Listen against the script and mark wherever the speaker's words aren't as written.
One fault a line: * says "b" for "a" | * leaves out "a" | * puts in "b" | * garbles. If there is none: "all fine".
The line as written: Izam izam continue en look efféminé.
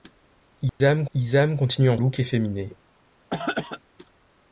all fine